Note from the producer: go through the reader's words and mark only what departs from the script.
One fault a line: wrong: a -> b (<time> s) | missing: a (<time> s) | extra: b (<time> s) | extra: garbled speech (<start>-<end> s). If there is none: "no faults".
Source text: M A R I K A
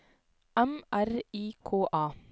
missing: A (0.8 s)